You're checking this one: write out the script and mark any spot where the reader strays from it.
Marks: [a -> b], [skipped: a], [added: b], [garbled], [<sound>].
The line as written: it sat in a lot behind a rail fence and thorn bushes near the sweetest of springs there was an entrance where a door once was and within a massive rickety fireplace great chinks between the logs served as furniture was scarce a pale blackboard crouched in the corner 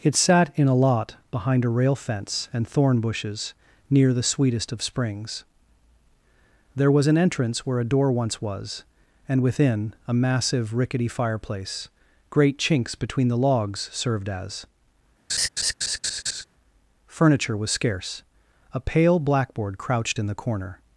it sat in a lot behind a rail fence and thorn bushes near the sweetest of springs there was an entrance where a door once was and within a massive rickety fireplace great chinks between the logs served as [laugh] furniture was scarce a pale blackboard crouched in the corner